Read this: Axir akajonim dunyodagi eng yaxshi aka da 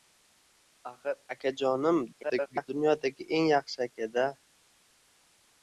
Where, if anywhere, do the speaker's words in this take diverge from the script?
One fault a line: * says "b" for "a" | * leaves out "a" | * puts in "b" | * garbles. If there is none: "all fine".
* garbles